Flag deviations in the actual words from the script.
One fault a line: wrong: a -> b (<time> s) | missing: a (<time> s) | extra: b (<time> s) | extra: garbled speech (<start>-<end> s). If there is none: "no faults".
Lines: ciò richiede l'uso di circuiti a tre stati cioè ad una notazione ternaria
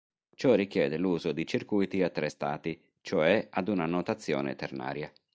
no faults